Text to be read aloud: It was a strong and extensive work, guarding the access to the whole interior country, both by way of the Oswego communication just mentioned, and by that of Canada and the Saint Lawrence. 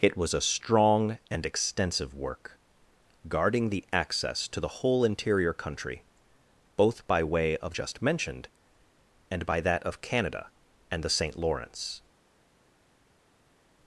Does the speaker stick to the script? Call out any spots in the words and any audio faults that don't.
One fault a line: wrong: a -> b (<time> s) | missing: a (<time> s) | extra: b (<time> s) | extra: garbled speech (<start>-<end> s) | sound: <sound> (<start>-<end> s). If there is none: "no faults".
missing: the Oswego communication (7.7 s)